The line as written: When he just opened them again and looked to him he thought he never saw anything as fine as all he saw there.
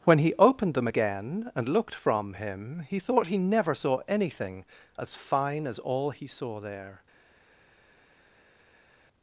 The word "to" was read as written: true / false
false